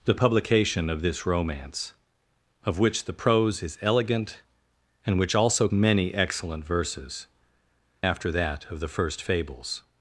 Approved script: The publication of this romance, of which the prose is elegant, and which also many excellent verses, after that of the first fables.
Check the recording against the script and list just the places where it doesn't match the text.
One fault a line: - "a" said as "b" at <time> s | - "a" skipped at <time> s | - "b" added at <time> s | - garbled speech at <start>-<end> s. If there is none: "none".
none